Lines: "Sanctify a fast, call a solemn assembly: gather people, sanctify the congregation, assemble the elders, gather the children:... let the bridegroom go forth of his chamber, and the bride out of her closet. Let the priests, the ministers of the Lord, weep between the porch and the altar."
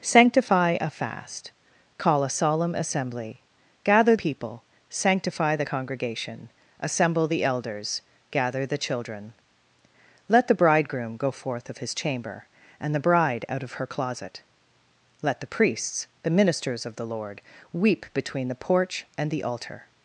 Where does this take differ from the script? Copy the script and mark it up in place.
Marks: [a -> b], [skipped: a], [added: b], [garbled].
"Sanctify a fast, call a solemn assembly: gather people, sanctify the congregation, assemble the elders, gather the children:... let the bridegroom go forth of his chamber, and the bride out of her closet. Let the priests, the ministers of the Lord, weep between the porch and the altar."